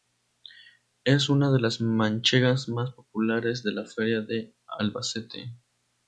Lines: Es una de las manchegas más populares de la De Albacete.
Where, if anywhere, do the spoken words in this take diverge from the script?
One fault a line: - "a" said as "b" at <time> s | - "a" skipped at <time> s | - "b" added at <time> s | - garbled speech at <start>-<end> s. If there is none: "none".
- "Feria" added at 3.9 s